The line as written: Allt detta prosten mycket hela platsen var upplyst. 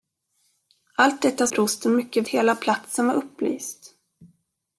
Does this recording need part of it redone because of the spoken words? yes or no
no